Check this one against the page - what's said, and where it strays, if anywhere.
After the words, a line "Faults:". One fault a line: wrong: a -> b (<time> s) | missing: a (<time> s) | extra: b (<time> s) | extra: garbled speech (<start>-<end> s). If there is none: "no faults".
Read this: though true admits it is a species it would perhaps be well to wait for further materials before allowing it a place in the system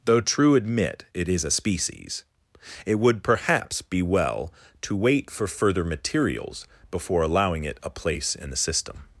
though true admit it is a species it would perhaps be well to wait for further materials before allowing it a place in the system
Faults:
wrong: admits -> admit (0.6 s)